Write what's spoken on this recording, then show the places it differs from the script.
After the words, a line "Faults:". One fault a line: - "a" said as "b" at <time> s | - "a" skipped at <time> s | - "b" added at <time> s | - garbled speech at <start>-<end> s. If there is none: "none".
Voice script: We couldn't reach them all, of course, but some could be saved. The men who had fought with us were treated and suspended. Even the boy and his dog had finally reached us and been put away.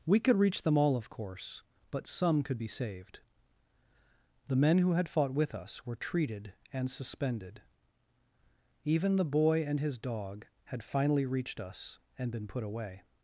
We could reach them all, of course, but some could be saved. The men who had fought with us were treated and suspended. Even the boy and his dog had finally reached us and been put away.
Faults:
- "couldn't" said as "could" at 0.2 s